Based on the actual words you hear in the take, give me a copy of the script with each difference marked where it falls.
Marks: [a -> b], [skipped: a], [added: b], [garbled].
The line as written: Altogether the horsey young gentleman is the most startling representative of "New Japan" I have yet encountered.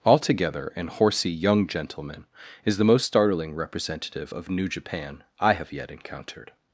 Altogether [the -> an] horsey young gentleman is the most startling representative of "New Japan" I have yet encountered.